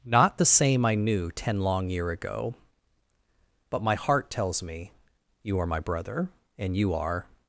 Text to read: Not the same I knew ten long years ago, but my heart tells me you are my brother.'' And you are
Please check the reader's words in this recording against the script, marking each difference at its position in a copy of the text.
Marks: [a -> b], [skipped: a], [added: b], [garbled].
Not the same I knew ten long [years -> year] ago, but my heart tells me you are my brother.'' And you are